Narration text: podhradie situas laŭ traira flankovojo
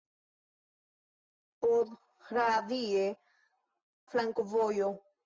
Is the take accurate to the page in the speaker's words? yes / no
no